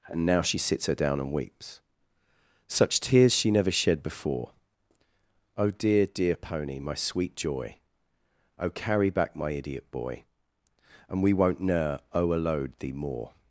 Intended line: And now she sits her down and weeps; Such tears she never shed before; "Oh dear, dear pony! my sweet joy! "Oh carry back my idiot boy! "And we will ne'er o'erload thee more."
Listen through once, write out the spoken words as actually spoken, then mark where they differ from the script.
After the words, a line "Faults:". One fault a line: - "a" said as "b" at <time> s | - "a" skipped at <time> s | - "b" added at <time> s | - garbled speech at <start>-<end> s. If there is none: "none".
And now she sits her down and weeps; Such tears she never shed before; "Oh dear, dear pony! my sweet joy! "Oh carry back my idiot boy! "And we won't ne'er o'erload thee more."
Faults:
- "will" said as "won't" at 11.3 s